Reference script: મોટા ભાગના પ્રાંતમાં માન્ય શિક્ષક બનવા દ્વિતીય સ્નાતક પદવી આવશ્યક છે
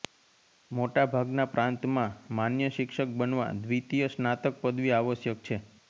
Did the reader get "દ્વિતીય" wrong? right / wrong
right